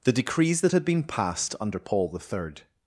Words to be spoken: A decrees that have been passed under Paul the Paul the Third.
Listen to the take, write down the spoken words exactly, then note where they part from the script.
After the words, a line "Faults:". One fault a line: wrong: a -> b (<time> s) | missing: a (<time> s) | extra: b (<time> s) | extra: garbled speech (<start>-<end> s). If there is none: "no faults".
The decrees that had been passed under Paul the Third.
Faults:
wrong: A -> The (0.0 s)
wrong: have -> had (0.7 s)
missing: Paul the (2.2 s)